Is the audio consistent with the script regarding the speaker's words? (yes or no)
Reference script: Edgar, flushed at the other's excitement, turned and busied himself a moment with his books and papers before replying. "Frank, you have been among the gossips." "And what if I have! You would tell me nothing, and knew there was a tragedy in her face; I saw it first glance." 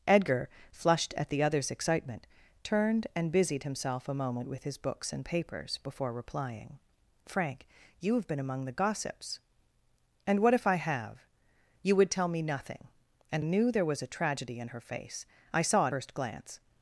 yes